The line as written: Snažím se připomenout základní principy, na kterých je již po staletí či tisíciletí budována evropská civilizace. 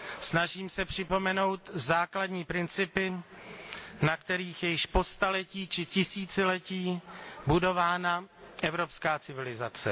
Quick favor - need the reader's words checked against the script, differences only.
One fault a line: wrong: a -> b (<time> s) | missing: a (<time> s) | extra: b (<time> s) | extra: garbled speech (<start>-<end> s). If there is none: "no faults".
no faults